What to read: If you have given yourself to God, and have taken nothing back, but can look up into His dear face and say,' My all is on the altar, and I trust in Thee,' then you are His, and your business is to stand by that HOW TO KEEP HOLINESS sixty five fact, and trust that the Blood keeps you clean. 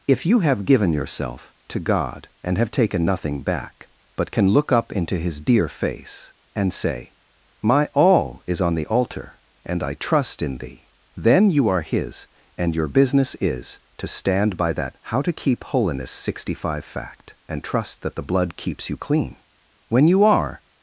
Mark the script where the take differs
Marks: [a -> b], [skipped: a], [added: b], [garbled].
If you have given yourself to God, and have taken nothing back, but can look up into His dear face and say,' My all is on the altar, and I trust in Thee,' then you are His, and your business is to stand by that HOW TO KEEP HOLINESS sixty five fact, and trust that the Blood keeps you clean. [added: When you are]